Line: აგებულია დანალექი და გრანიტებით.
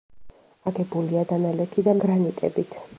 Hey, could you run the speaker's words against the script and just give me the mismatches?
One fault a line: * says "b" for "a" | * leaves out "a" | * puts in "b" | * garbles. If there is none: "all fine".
all fine